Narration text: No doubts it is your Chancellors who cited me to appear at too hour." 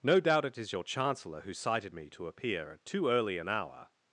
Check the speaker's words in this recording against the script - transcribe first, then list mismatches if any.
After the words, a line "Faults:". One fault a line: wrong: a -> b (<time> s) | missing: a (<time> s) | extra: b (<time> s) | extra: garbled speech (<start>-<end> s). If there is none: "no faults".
No doubt it is your Chancellor who cited me to appear at too early an hour."
Faults:
wrong: doubts -> doubt (0.2 s)
wrong: Chancellors -> Chancellor (0.8 s)
extra: early an (3.1 s)